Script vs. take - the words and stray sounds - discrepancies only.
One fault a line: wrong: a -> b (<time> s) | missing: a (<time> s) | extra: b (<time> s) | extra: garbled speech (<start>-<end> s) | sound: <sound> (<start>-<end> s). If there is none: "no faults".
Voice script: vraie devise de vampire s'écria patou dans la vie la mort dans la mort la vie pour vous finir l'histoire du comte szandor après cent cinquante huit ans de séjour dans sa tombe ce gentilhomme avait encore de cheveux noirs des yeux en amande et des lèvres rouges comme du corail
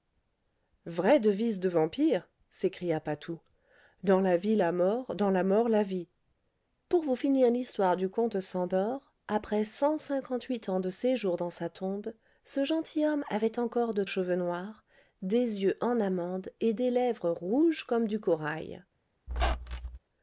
sound: squeak (19.3-20.0 s)